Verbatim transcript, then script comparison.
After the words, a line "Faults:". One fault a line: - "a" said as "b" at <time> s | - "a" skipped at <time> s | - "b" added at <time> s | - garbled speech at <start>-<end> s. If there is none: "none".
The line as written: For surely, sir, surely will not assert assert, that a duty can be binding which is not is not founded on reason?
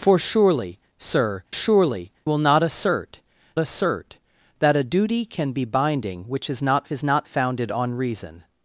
For surely, sir, surely will not assert assert, that a duty can be binding which is not is not founded on reason?
Faults:
none